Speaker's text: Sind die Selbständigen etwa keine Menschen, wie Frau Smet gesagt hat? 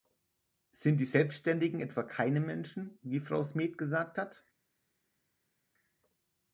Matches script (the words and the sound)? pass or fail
pass